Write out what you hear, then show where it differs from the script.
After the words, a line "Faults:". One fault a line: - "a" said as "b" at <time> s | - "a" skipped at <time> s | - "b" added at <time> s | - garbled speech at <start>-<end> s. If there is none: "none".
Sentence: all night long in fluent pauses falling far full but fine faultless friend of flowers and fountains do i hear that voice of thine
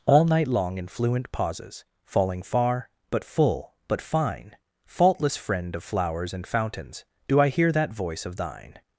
all night long in fluent pauses falling far but full but fine faultless friend of flowers and fountains do i hear that voice of thine
Faults:
- "but" added at 3.1 s